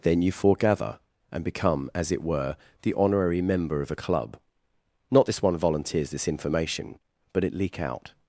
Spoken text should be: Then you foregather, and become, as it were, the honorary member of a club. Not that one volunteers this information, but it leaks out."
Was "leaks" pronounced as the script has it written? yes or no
no